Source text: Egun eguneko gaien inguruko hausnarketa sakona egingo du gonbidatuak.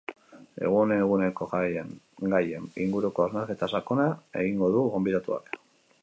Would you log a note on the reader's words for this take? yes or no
no